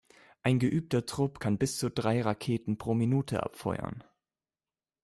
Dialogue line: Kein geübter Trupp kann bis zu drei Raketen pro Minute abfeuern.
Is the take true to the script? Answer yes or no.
no